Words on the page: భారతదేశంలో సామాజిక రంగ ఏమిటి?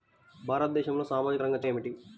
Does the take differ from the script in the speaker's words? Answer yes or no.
no